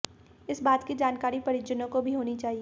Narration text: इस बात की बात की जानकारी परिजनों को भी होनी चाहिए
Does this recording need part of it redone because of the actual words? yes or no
yes